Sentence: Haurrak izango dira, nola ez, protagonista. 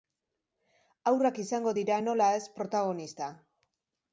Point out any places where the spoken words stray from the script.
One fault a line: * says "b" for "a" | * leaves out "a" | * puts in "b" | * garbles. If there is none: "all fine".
all fine